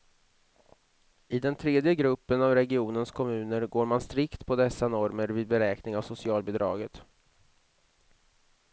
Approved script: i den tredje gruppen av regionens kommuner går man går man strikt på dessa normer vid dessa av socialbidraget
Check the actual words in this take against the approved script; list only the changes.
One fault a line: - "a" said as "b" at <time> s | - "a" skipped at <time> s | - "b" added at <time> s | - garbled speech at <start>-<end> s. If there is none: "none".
- "går man" skipped at 4.0 s
- "dessa" said as "beräkning" at 5.5 s